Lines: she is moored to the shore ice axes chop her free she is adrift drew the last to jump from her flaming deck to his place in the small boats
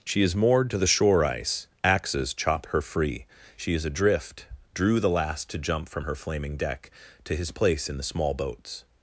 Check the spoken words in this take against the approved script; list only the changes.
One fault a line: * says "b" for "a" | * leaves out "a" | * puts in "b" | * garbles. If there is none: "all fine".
all fine